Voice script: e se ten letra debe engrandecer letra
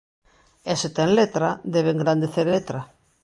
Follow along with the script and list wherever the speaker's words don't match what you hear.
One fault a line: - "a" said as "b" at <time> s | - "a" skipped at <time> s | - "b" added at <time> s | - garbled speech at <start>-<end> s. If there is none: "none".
none